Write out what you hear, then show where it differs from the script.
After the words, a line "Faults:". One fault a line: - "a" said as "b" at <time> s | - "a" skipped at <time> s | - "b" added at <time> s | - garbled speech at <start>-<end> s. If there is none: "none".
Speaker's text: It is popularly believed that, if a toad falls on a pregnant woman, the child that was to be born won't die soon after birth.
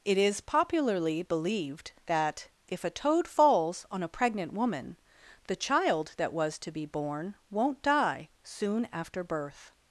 It is popularly believed that, if a toad falls on a pregnant woman, the child that was to be born won't die soon after birth.
Faults:
none